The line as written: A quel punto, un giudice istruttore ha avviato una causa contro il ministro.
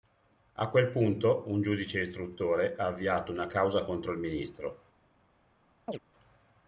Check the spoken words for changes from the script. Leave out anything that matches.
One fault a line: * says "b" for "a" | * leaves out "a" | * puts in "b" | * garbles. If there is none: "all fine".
all fine